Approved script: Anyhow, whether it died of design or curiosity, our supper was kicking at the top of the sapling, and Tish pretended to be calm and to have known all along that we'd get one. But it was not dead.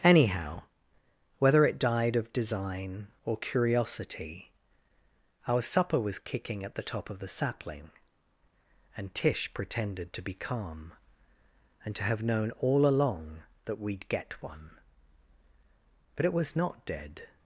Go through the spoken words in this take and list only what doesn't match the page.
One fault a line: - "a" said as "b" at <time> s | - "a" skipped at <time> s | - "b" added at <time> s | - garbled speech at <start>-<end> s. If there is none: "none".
none